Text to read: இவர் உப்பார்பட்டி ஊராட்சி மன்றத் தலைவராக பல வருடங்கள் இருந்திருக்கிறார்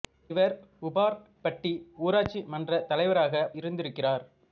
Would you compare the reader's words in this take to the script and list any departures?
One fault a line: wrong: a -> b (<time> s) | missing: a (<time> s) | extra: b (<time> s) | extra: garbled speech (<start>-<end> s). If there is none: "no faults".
missing: பல வருடங்கள் (3.4 s)